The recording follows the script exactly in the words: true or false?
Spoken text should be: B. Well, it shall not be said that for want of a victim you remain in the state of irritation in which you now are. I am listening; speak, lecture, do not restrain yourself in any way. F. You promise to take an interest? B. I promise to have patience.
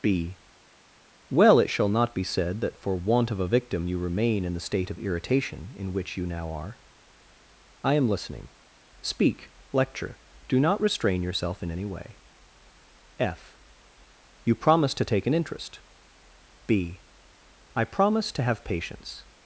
true